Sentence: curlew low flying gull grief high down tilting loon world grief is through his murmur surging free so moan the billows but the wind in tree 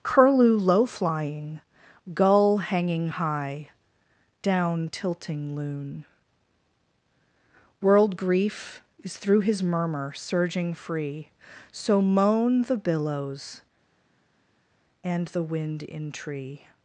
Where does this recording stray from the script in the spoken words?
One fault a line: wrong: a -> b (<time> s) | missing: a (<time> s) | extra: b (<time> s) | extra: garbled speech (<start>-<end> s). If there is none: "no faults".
wrong: grief -> hanging (2.6 s)
wrong: but -> and (15.0 s)